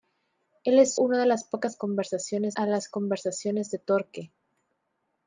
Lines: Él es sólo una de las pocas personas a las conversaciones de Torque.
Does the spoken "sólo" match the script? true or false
false